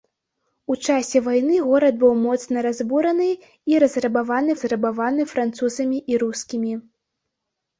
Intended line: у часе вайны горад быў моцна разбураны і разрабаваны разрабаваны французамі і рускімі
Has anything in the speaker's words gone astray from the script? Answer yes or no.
no